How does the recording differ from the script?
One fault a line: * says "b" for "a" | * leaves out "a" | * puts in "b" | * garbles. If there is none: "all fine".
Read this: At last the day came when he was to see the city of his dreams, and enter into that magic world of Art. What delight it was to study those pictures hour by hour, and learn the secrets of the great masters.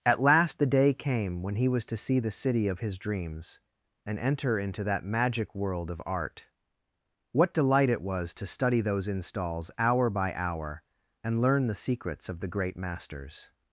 * says "installs" for "pictures"